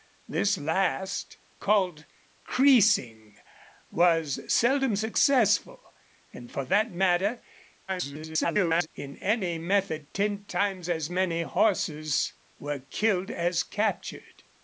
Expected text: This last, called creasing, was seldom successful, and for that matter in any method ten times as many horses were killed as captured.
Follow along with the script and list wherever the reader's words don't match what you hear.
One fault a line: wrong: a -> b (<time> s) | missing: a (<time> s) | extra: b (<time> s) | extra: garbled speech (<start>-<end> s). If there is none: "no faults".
extra: garbled speech (7.9-8.9 s)